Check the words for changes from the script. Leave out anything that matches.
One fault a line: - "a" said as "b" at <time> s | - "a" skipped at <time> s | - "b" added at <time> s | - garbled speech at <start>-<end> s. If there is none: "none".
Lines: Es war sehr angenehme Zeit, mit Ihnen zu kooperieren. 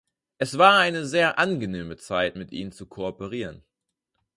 - "eine" added at 0.8 s